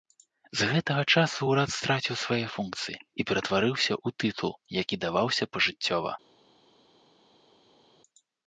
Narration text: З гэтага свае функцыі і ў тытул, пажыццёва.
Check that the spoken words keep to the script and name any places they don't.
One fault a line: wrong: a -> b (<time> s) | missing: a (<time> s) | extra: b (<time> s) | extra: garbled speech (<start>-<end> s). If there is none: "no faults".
extra: часу ўрад страціў (1.2 s)
extra: ператварыўся (3.3 s)
extra: які даваўся (4.8 s)